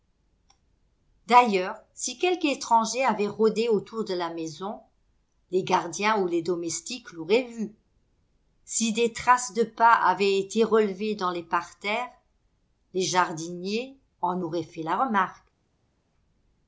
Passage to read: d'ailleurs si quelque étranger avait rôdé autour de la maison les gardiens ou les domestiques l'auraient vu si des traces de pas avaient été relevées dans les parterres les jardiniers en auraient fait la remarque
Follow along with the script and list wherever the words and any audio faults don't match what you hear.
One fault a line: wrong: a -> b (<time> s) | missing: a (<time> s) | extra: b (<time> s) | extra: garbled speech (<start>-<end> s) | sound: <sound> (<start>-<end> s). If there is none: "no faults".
no faults